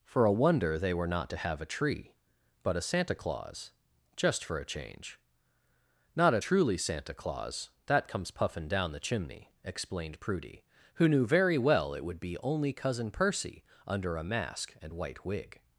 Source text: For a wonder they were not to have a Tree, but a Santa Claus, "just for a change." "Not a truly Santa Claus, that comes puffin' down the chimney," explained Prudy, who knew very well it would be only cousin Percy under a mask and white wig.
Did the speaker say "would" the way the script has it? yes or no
yes